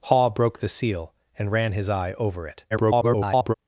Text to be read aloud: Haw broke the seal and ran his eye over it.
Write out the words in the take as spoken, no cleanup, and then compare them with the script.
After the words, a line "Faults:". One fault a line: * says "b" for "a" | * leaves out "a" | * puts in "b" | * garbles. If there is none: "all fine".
Haw broke the seal and ran his eye over it. [garbled]
Faults:
* garbles